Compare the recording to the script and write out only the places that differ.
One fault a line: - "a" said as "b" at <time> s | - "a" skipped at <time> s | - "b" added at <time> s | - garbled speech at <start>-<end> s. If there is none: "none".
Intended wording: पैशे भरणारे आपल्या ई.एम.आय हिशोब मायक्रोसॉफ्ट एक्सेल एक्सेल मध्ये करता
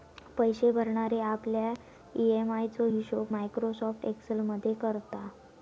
- "चो" added at 2.7 s
- "एक्सेल" skipped at 4.4 s